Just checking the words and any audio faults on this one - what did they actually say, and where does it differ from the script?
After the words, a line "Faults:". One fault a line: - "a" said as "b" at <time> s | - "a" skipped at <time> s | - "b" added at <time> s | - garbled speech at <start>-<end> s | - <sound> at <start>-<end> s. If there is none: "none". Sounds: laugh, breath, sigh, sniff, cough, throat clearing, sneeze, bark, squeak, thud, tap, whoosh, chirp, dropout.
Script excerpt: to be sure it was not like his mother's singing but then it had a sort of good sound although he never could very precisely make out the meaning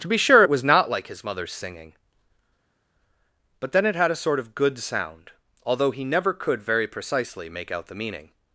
to be sure it was not like his mother's singing but then it had a sort of good sound although he never could very precisely make out the meaning
Faults:
none